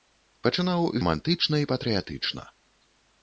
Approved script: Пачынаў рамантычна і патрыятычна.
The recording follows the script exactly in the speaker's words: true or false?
true